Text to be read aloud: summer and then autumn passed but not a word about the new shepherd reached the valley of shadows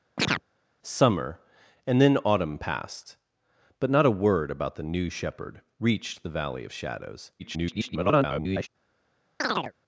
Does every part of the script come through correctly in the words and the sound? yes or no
no